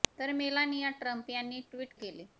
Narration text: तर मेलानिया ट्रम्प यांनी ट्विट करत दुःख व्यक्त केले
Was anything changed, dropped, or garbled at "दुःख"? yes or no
yes